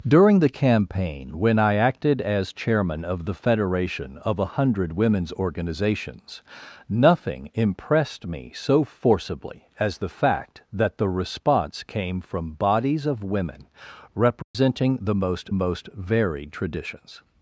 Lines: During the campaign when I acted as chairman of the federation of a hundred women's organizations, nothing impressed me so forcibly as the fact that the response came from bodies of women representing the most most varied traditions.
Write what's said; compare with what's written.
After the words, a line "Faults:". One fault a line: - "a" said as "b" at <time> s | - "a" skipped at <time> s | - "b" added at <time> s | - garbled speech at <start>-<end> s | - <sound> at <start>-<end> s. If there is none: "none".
During the campaign when I acted as chairman of the federation of a hundred women's organizations, nothing impressed me so forcibly as the fact that the response came from bodies of women representing the most most varied traditions.
Faults:
- dropout at 14.4-14.5 s